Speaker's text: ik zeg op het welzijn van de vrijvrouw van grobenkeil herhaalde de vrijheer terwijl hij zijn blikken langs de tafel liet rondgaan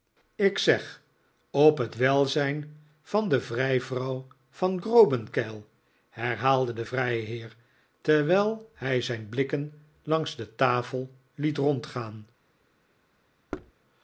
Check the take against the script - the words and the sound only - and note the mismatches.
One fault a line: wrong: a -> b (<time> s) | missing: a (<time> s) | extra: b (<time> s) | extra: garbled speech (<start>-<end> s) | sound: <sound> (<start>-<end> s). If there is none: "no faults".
sound: thud (13.5-13.7 s)